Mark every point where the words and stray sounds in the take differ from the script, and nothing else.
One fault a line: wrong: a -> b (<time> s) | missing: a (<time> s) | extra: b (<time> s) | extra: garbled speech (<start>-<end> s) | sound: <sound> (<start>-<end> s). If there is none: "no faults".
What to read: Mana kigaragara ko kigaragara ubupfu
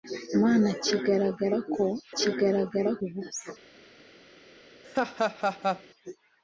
sound: laugh (4.8-5.8 s)